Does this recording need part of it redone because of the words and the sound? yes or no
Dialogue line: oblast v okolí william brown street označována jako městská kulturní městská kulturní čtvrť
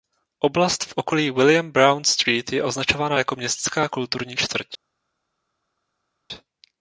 yes